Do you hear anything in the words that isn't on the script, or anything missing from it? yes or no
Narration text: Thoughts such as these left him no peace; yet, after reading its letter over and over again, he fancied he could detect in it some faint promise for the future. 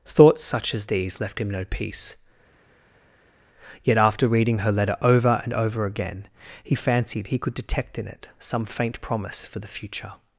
yes